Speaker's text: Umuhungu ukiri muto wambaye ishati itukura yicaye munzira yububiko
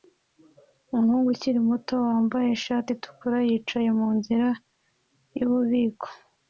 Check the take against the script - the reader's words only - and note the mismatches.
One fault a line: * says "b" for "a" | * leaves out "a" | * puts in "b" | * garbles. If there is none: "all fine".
all fine